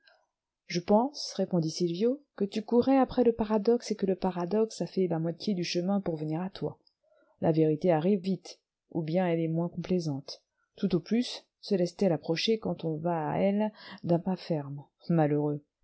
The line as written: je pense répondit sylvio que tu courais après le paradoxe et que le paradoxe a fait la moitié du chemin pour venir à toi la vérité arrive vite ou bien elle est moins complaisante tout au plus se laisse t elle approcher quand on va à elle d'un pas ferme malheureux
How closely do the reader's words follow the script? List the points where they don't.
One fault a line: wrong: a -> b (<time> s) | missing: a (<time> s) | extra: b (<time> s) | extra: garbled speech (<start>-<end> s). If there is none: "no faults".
no faults